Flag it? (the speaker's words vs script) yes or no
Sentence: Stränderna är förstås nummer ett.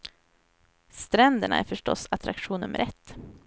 yes